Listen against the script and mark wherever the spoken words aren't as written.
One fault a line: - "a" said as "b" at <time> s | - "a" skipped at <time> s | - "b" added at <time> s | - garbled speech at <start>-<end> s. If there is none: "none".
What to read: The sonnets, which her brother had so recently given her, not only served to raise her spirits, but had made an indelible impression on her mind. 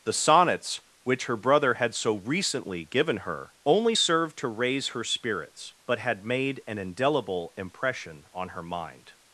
- "not" skipped at 3.6 s